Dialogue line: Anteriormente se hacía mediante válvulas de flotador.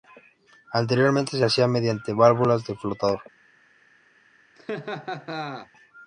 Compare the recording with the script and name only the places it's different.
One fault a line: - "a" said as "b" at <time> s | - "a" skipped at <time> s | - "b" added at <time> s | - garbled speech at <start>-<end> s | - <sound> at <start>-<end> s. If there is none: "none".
- laugh at 4.6-5.7 s